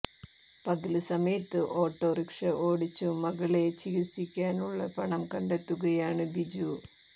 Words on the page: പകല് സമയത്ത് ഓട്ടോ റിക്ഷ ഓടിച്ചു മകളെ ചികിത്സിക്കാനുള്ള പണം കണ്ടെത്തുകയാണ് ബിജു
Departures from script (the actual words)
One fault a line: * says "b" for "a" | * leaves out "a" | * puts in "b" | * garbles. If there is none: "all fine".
all fine